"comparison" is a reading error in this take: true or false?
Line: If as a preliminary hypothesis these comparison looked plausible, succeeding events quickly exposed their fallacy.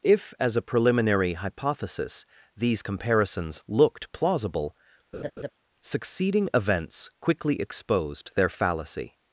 true